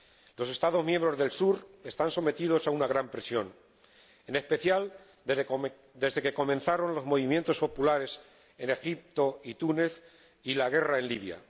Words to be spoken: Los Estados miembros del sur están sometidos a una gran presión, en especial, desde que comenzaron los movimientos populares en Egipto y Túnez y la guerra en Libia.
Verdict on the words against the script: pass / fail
pass